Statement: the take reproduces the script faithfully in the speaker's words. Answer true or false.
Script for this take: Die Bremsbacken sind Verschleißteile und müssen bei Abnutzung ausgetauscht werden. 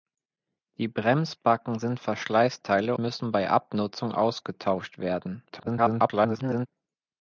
false